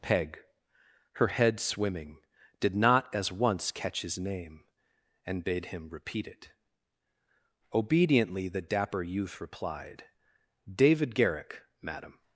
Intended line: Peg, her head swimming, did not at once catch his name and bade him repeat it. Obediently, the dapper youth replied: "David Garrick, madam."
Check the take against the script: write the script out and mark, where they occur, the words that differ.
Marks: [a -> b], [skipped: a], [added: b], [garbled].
Peg, her head swimming, did not [at -> as] once catch his name and bade him repeat it. Obediently, the dapper youth replied: "David Garrick, madam."